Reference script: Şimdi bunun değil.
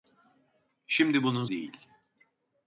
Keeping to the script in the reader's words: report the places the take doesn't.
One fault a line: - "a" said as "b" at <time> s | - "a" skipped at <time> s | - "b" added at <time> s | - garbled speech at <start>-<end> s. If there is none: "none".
none